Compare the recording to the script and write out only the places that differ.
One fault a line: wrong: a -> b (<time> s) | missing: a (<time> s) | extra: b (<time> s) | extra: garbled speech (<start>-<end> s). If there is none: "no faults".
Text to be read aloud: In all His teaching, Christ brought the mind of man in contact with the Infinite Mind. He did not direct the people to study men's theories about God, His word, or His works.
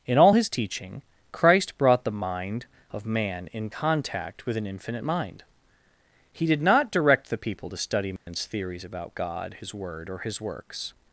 wrong: the -> an (4.6 s)